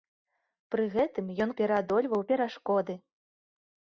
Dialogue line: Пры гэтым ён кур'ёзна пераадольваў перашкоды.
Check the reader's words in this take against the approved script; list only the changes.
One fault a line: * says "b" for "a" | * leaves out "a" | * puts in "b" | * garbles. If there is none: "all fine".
* leaves out "кур'ёзна"